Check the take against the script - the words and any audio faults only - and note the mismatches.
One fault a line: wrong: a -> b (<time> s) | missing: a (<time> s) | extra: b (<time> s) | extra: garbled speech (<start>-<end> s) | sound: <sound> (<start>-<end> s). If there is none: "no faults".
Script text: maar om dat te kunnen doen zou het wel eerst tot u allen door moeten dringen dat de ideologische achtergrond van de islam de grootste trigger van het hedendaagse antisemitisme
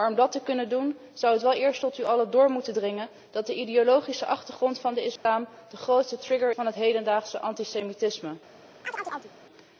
sound: dropout (5.2-5.3 s)
sound: chirp (8.8-9.3 s)